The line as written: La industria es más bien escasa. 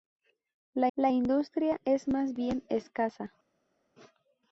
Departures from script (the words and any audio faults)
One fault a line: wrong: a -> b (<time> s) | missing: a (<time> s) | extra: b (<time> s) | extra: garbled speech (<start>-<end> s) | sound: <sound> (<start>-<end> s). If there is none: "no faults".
extra: la (0.9 s)